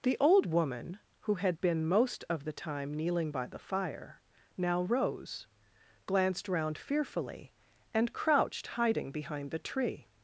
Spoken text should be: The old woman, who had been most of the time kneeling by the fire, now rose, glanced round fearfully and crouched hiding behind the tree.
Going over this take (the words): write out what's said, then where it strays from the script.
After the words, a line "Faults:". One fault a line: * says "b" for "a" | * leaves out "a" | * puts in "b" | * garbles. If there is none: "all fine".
The old woman, who had been most of the time kneeling by the fire, now rose, glanced round fearfully and crouched hiding behind the tree.
Faults:
all fine